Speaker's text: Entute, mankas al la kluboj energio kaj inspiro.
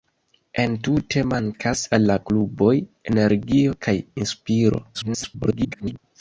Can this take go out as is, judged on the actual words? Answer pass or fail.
fail